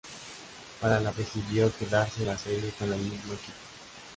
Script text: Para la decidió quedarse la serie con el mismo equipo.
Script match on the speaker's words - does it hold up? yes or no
yes